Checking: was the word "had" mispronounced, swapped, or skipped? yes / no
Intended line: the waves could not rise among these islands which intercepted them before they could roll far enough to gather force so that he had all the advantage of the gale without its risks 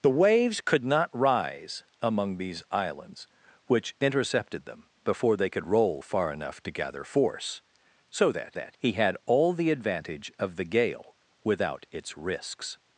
no